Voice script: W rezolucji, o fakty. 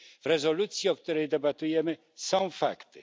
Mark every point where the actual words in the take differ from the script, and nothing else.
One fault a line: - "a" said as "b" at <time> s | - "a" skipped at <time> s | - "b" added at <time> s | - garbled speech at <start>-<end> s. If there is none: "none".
- "której debatujemy są" added at 1.0 s